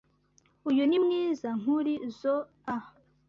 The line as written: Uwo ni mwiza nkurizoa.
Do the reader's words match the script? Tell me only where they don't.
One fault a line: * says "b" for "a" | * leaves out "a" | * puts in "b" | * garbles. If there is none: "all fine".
* says "Uyu" for "Uwo"